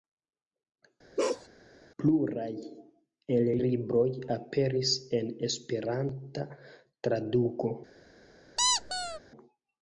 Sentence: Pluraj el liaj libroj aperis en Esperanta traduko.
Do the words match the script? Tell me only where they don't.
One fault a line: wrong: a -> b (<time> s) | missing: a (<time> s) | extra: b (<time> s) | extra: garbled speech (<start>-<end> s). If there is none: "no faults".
missing: liaj (3.5 s)